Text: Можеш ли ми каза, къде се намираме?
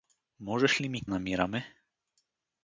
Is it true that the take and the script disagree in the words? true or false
true